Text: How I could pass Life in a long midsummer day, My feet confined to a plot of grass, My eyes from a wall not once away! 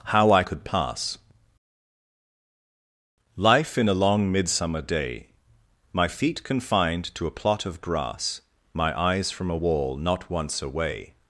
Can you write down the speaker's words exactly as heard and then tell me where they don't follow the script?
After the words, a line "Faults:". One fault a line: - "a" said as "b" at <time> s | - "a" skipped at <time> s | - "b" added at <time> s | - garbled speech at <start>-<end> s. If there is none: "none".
How I could pass Life in a long midsummer day, My feet confined to a plot of grass, My eyes from a wall not once away!
Faults:
none